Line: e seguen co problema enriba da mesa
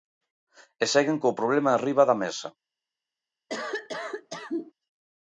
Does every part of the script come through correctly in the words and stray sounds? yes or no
no